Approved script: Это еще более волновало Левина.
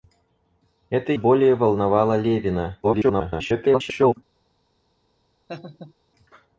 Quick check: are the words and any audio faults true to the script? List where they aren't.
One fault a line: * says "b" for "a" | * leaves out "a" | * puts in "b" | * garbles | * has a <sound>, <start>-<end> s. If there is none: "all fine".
* leaves out "еще"
* garbles
* has a laugh, 5.5-5.9 s